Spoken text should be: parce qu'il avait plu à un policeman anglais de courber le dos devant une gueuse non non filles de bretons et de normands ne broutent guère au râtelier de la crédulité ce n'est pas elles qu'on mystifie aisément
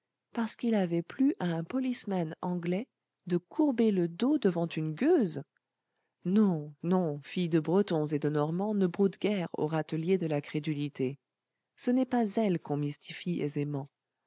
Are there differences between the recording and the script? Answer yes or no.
no